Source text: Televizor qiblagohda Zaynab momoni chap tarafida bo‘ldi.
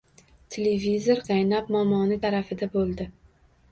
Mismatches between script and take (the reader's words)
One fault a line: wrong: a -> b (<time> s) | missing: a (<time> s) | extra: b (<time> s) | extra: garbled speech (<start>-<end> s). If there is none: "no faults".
missing: qiblagohda (1.2 s)
missing: chap (2.2 s)